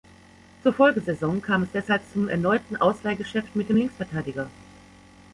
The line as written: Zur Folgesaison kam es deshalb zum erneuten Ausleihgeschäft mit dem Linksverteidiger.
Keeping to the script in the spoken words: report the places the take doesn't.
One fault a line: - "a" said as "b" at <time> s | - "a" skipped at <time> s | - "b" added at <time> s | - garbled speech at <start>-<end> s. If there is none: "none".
none